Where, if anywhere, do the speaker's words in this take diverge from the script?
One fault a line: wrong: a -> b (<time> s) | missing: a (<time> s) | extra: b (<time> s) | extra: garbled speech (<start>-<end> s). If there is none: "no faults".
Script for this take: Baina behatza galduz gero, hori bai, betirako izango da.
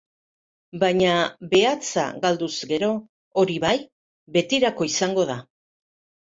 no faults